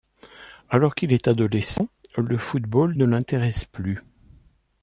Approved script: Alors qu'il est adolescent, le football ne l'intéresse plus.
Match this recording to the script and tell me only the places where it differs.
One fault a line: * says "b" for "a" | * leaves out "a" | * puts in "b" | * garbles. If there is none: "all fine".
all fine